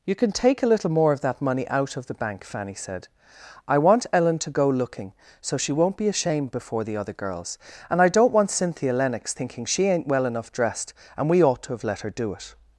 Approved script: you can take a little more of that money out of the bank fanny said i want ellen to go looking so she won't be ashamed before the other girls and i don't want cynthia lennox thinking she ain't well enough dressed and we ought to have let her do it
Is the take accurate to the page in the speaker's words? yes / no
yes